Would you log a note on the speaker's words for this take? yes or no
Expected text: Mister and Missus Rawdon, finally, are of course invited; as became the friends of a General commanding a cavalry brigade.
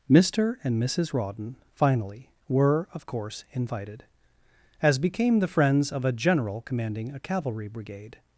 yes